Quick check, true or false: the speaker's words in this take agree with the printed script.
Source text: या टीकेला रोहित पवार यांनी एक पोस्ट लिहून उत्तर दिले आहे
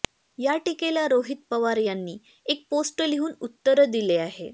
true